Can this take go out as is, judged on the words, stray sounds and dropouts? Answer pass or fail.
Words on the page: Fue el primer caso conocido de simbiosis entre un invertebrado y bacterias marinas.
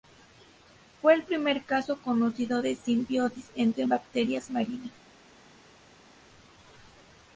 fail